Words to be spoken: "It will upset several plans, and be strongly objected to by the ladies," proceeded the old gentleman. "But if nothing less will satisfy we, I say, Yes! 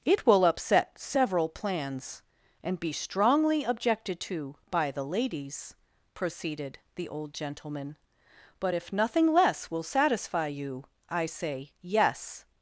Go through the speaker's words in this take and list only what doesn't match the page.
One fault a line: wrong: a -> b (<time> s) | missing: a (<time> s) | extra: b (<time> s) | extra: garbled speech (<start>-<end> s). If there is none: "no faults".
wrong: we -> you (10.5 s)